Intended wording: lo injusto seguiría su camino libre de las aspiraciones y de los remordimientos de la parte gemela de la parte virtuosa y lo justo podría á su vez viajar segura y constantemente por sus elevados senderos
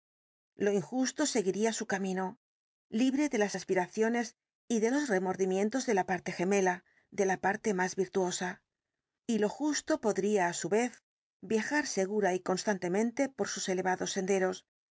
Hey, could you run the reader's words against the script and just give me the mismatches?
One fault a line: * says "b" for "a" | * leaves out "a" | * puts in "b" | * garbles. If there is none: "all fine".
* puts in "más"